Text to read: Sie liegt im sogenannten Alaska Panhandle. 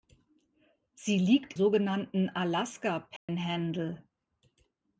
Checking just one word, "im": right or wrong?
wrong